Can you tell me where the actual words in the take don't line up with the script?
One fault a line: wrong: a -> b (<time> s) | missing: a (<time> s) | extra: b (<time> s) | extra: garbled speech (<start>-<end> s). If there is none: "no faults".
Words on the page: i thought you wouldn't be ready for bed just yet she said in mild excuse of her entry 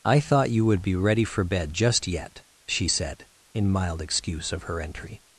wrong: wouldn't -> would (0.7 s)